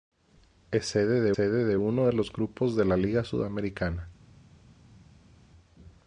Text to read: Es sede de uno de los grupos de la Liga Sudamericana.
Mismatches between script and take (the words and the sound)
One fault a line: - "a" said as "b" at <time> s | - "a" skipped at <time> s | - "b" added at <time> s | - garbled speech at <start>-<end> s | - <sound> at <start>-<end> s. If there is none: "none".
- "sede de" added at 1.3 s